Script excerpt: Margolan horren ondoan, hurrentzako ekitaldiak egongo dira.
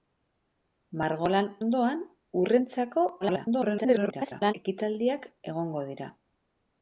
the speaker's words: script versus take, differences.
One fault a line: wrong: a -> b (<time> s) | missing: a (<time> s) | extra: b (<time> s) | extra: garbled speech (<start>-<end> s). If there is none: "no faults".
missing: horren (1.5 s)
extra: garbled speech (3.2-4.5 s)